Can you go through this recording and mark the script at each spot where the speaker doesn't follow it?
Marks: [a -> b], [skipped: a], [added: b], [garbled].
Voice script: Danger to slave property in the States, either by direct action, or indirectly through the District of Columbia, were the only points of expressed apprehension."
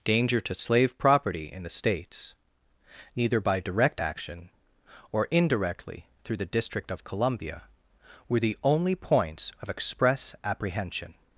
Danger to slave property in the States, [either -> neither] by direct action, or indirectly through the District of Columbia, were the only points of [expressed -> express] apprehension."